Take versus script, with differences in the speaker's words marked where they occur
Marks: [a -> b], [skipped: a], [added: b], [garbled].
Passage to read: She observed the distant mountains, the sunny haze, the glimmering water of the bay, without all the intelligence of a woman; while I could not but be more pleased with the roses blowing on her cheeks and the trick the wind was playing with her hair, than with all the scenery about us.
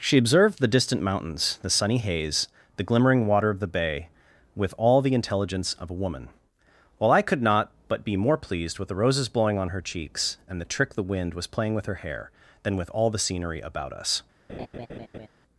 She observed the distant mountains, the sunny haze, the glimmering water of the bay, [without -> with] all the intelligence of a woman; while I could not but be more pleased with the roses blowing on her cheeks and the trick the wind was playing with her hair, than with all the scenery about us.